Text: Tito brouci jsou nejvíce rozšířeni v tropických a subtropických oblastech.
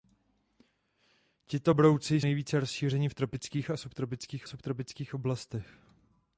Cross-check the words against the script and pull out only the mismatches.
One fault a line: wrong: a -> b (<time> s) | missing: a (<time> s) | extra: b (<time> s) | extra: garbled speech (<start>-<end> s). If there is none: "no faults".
missing: jsou (2.2 s)
extra: subtropických (4.5 s)